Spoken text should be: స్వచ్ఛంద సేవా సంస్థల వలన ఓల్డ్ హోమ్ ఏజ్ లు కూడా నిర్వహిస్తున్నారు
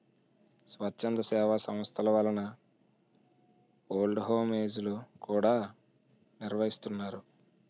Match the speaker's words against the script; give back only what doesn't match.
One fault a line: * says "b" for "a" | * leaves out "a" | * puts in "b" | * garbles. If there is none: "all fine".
all fine